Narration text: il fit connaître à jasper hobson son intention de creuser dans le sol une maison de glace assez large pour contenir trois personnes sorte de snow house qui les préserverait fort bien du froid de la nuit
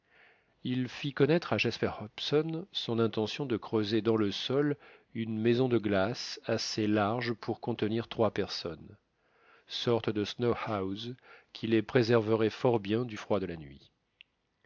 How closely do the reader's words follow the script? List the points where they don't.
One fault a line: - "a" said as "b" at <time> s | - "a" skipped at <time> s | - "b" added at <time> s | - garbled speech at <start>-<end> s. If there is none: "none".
none